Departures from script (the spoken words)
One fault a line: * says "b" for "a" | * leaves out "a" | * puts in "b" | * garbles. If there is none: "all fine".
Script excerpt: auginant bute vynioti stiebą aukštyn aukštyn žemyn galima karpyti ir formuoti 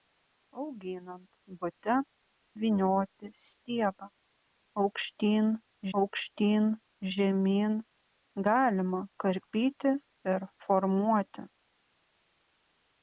all fine